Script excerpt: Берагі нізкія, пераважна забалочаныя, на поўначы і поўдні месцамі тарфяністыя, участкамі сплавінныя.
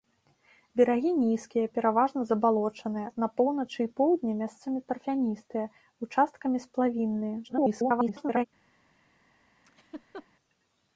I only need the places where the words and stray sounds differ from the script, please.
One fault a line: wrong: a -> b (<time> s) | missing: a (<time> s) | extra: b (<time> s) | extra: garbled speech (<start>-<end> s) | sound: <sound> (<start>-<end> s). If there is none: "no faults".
extra: garbled speech (7.4-8.5 s)
sound: laugh (9.6-10.3 s)